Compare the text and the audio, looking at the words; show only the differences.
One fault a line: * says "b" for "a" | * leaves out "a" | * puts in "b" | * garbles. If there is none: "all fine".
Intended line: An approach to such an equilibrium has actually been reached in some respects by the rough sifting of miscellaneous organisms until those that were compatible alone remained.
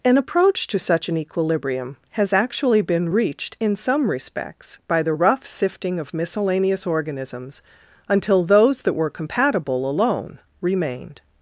all fine